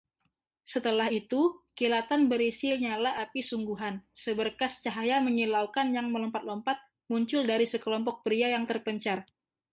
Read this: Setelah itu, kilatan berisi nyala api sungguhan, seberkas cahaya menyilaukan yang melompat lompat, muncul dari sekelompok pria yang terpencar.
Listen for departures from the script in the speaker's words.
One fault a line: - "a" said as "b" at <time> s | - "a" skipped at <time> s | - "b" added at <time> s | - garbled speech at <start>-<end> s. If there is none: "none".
none